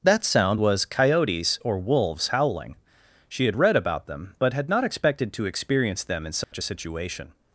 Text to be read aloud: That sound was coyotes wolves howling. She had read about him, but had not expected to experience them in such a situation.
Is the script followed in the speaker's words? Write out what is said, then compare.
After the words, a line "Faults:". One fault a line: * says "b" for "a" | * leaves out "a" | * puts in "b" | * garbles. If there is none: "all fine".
That sound was coyotes or wolves howling. She had read about them, but had not expected to experience them in such a situation.
Faults:
* puts in "or"
* says "them" for "him"